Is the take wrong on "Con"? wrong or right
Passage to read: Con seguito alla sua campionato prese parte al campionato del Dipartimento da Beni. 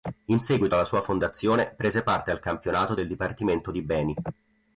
wrong